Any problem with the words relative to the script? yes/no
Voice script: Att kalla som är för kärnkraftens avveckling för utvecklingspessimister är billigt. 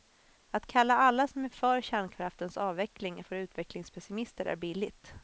yes